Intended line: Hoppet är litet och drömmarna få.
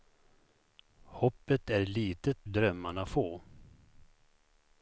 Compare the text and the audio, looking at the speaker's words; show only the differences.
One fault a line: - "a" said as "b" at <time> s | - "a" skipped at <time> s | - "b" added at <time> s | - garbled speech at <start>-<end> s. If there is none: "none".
- "och" skipped at 2.5 s